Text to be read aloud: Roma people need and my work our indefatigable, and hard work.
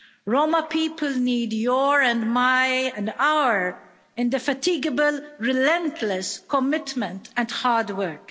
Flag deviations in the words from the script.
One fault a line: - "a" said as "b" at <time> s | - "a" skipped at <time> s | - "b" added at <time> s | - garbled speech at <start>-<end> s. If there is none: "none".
- "your" added at 1.5 s
- "work" said as "and" at 3.0 s
- "relentless commitment" added at 5.4 s